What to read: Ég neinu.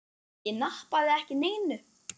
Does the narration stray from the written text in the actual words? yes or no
yes